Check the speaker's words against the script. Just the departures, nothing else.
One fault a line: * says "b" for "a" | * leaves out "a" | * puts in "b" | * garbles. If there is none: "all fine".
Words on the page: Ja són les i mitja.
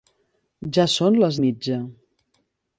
all fine